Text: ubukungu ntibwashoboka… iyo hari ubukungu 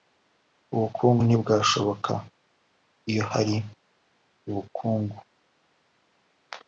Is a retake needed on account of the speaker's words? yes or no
no